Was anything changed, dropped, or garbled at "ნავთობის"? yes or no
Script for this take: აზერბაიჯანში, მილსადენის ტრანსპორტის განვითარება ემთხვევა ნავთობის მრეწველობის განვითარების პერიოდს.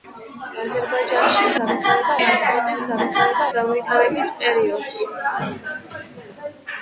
yes